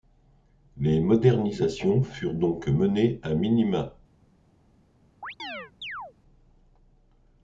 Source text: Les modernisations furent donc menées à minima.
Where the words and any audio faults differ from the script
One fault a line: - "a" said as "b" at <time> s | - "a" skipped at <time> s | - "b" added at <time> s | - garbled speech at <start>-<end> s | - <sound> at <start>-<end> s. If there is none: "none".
- chirp at 5.2-6.1 s